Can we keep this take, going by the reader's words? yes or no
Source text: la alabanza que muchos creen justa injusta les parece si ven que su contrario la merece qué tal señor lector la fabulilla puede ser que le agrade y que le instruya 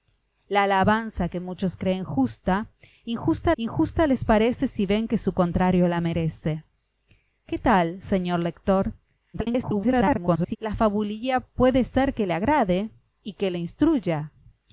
no